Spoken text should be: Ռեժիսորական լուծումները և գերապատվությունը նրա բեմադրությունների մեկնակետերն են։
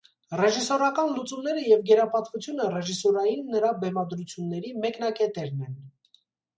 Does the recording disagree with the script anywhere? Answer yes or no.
yes